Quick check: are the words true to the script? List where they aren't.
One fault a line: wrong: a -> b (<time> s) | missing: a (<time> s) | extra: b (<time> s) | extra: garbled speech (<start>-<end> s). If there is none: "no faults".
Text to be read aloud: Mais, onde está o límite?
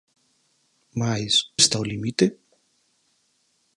missing: onde (1.3 s)